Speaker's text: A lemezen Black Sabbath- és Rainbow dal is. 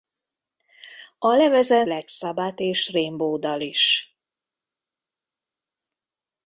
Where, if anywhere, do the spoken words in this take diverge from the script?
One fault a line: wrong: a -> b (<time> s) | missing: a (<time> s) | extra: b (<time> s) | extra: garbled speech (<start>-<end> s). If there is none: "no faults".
no faults